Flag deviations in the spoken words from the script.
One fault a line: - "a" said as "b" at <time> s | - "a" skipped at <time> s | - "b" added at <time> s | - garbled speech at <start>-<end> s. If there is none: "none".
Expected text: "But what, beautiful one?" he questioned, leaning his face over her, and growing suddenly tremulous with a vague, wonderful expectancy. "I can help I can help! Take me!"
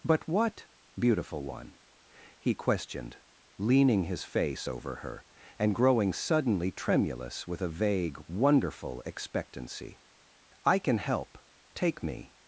- "I can help" skipped at 11.4 s